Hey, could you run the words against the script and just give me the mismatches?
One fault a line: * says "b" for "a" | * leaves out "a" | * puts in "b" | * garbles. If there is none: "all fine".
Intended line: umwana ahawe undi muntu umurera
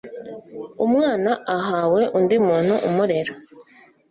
all fine